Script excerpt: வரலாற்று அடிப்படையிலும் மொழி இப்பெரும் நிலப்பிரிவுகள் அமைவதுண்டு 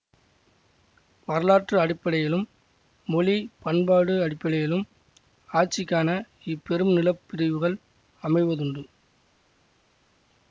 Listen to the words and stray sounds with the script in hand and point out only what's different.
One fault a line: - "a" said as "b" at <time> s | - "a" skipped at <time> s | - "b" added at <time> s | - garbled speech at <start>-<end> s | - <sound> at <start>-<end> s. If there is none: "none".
- "பண்பாடு அடிப்படையிலும் ஆட்சிக்கான" added at 3.6 s